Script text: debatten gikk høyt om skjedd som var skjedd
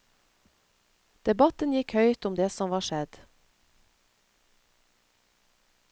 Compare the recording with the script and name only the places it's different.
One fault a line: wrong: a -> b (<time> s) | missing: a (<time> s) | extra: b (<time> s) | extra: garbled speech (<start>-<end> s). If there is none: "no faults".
wrong: skjedd -> det (2.4 s)